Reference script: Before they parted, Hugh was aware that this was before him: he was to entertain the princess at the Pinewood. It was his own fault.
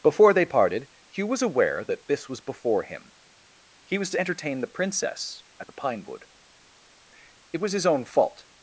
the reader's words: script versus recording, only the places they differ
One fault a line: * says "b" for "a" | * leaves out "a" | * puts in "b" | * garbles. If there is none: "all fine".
all fine